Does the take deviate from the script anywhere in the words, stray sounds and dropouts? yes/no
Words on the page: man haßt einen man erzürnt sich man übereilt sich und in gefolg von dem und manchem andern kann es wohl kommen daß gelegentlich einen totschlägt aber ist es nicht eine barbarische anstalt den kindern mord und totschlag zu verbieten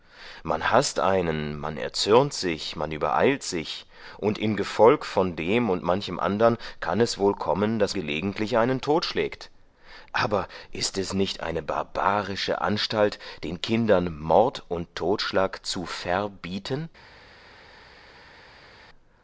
no